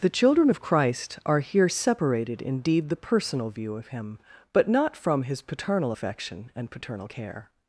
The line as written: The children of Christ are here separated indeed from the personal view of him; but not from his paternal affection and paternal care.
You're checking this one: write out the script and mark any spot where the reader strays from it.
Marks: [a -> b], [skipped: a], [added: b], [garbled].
The children of Christ are here separated indeed [skipped: from] the personal view of him; but not from his paternal affection and paternal care.